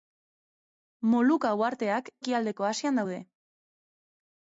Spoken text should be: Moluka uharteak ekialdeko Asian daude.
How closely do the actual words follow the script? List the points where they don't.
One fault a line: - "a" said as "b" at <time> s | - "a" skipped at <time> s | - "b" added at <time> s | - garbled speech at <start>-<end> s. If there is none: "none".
none